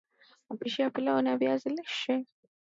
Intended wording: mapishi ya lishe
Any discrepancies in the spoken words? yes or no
yes